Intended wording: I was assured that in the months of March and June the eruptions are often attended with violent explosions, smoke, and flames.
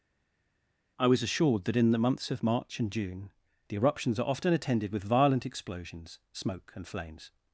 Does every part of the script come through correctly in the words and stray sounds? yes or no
yes